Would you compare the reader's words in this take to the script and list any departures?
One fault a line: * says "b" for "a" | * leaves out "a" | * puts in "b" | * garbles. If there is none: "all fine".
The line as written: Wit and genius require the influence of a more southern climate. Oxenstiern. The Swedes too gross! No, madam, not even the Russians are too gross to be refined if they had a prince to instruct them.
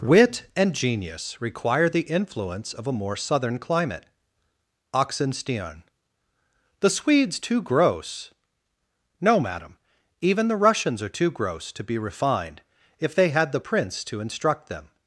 * leaves out "not"
* says "the" for "a"